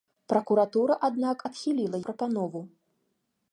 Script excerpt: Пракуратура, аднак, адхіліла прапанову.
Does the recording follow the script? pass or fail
pass